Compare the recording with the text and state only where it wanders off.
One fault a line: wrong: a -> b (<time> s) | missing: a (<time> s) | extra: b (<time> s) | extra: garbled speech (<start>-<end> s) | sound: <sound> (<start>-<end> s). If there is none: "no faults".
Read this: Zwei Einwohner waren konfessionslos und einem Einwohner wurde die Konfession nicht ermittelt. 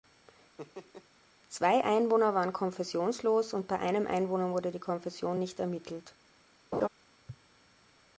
sound: laugh (0.6-1.1 s)
extra: bei (3.7 s)
sound: laugh (6.7-6.9 s)